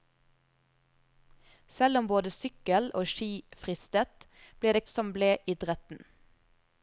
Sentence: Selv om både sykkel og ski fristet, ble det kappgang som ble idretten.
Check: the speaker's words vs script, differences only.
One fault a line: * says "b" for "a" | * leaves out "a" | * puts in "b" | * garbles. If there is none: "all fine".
* leaves out "kappgang"